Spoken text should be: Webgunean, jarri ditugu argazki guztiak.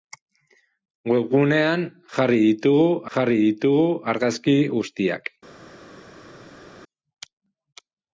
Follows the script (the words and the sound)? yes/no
no